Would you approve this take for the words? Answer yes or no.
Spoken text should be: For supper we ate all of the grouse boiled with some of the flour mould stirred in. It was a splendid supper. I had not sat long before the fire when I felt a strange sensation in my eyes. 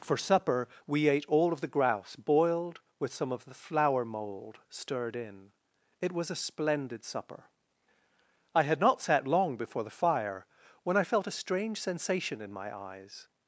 yes